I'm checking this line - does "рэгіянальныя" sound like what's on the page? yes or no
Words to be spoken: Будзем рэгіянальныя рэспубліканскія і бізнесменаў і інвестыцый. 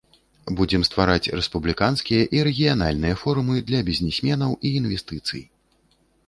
no